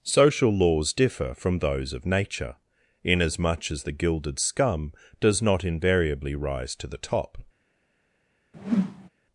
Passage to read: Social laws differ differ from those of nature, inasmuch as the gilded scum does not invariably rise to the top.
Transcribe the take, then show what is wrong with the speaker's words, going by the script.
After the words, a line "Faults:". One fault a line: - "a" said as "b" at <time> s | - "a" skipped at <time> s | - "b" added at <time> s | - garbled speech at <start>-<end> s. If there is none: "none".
Social laws differ from those of nature, inasmuch as the gilded scum does not invariably rise to the top.
Faults:
- "differ" skipped at 1.4 s